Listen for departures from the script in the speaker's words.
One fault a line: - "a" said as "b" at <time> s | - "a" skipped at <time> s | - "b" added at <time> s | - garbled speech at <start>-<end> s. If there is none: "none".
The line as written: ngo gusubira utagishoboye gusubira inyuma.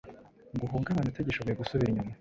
- "gusubira" said as "uhungabane" at 0.7 s